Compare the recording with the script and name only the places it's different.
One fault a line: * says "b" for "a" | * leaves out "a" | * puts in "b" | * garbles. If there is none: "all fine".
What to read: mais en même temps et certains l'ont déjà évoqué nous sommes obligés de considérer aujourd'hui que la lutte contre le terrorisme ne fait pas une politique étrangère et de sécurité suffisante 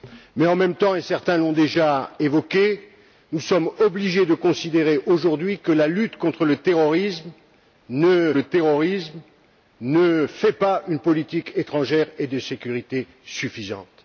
* puts in "le terrorisme ne"